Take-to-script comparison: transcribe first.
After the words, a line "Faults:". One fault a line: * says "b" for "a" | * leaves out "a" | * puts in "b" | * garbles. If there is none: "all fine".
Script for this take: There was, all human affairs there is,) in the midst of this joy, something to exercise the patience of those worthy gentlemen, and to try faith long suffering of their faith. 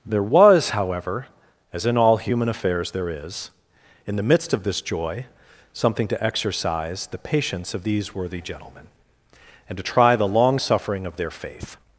There was, however, (as in all human affairs there is,) in the midst of this joy, something to exercise the patience of these worthy gentlemen, and to try the long suffering of their faith.
Faults:
* puts in "however as in"
* says "these" for "those"
* says "the" for "faith"